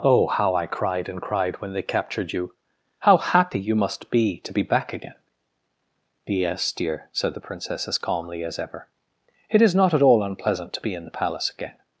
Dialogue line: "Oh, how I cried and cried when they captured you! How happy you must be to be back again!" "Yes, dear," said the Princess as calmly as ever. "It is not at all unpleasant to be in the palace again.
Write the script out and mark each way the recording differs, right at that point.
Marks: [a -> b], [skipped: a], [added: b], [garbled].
"Oh, how I cried and cried when they captured you! How happy you must be to be back again!" "Yes, dear," said the Princess as calmly as ever. "It is not at all unpleasant to be in the palace again.